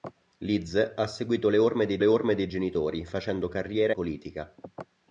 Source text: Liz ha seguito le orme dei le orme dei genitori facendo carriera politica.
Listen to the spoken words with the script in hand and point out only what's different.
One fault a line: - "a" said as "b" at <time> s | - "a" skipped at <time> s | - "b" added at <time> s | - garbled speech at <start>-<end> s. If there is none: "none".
none